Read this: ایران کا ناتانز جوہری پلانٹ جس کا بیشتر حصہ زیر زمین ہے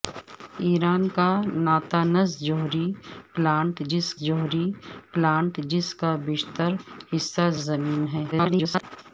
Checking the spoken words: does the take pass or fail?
fail